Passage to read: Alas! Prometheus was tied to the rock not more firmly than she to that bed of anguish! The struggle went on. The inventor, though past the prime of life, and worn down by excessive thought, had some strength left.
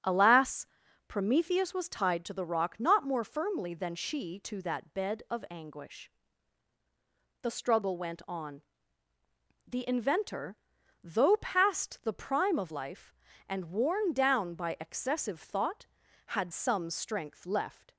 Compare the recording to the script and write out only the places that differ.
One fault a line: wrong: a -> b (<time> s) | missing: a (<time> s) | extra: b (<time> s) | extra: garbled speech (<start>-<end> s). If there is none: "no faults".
no faults